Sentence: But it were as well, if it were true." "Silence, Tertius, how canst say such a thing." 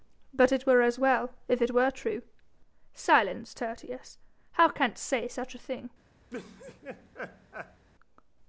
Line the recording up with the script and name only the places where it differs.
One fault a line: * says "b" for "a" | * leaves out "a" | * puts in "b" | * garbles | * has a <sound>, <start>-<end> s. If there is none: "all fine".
* has a laugh, 6.3-7.9 s